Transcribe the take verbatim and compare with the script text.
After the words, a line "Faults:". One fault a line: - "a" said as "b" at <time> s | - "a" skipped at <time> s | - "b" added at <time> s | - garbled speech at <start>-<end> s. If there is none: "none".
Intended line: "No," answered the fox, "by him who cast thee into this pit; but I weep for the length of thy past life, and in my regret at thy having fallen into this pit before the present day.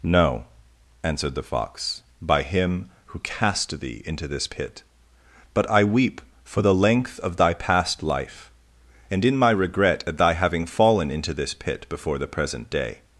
"No," answered the fox, "by him who cast thee into this pit; but I weep for the length of thy past life, and in my regret at thy having fallen into this pit before the present day.
Faults:
none